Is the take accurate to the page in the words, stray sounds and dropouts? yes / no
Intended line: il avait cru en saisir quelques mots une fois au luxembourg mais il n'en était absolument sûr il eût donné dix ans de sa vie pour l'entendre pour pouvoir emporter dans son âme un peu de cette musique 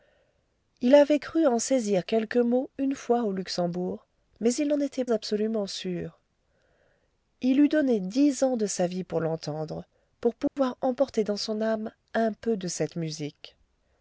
no